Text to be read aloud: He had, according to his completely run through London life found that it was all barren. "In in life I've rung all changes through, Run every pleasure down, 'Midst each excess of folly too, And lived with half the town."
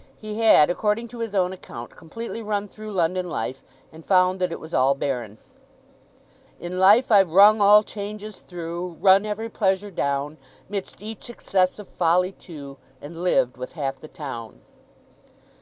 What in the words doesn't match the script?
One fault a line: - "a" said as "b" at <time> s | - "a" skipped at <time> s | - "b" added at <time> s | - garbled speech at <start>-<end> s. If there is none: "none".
- "own account" added at 1.4 s
- "and" added at 3.9 s
- "in" skipped at 6.8 s